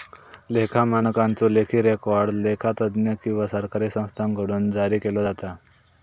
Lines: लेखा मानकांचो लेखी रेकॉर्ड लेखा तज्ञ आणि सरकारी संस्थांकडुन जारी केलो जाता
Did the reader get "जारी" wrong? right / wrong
right